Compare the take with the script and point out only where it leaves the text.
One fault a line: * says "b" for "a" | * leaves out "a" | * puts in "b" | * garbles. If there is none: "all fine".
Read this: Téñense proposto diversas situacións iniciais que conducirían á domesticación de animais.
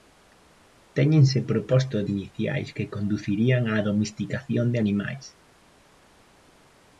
* leaves out "diversas situacións"